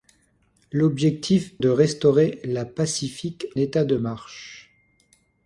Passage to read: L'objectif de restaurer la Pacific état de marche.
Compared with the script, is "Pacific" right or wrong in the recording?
right